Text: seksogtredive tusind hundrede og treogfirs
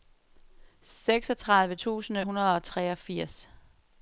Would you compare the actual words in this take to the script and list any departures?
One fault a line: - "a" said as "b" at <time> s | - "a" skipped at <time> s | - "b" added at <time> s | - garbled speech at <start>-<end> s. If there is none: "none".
none